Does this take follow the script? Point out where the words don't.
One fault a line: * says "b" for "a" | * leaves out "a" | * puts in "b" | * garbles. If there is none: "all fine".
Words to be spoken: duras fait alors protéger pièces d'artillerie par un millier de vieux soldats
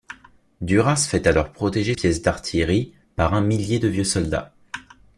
all fine